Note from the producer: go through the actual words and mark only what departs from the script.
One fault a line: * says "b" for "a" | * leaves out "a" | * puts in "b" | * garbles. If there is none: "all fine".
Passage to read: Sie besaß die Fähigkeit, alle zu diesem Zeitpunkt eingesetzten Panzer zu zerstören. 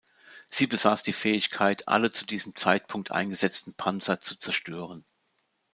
all fine